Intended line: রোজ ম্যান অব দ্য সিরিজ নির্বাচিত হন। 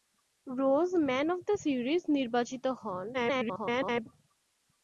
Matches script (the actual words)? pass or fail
fail